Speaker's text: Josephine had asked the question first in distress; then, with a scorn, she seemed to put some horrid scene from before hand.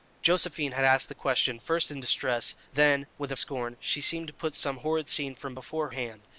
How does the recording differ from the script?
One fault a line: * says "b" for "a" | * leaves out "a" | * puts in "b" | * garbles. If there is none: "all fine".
all fine